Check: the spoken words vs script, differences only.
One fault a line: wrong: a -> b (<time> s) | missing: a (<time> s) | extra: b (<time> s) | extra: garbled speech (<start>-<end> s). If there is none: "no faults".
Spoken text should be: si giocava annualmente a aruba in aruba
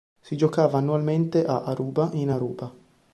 no faults